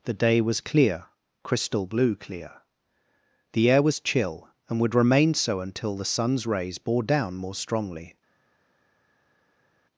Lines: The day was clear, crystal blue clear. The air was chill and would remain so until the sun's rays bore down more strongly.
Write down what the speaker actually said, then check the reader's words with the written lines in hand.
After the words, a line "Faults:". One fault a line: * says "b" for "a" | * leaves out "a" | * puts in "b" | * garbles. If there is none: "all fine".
The day was clear, crystal blue clear. The air was chill and would remain so until the sun's rays bore down more strongly.
Faults:
all fine